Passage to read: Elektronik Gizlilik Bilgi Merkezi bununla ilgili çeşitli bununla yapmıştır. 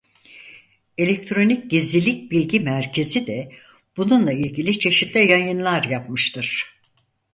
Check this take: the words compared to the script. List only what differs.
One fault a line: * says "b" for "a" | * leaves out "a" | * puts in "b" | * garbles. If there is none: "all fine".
* puts in "de"
* says "yayınlar" for "bununla"